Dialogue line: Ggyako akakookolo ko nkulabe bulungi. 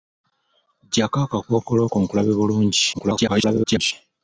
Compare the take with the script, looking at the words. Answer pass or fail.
fail